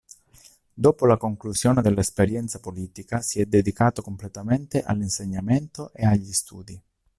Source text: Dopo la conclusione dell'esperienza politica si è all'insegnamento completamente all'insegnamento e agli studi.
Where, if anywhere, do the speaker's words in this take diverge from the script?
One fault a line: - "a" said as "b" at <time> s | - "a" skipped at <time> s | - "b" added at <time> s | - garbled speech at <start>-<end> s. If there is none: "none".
- "all'insegnamento" said as "dedicato" at 3.5 s